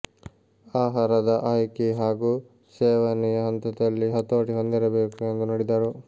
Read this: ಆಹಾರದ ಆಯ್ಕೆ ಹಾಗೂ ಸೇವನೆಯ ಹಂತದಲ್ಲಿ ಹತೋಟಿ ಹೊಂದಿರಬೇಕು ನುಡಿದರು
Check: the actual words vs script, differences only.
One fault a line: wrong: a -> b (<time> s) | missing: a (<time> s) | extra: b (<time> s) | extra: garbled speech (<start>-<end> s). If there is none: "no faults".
extra: ಎಂದು (5.3 s)